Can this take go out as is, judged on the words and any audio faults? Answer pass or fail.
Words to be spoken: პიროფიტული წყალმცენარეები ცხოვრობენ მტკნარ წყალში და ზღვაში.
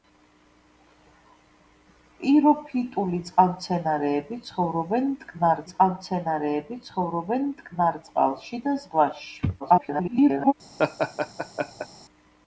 fail